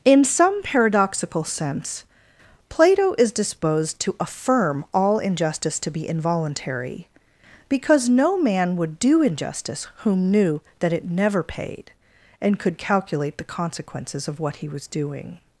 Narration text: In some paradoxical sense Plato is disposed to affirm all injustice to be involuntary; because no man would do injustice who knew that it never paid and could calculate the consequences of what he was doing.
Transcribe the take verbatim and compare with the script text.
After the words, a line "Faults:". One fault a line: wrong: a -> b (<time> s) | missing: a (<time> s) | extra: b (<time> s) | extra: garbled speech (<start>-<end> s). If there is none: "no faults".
In some paradoxical sense Plato is disposed to affirm all injustice to be involuntary; because no man would do injustice whom knew that it never paid and could calculate the consequences of what he was doing.
Faults:
wrong: who -> whom (10.0 s)